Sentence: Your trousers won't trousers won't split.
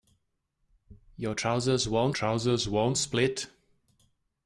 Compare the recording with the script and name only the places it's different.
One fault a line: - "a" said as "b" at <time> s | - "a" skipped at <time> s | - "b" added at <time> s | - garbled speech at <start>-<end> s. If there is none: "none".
none